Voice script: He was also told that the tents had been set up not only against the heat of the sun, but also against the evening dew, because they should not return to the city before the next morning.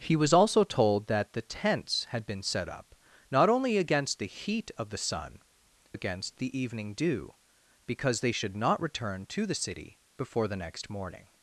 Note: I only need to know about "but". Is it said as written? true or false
false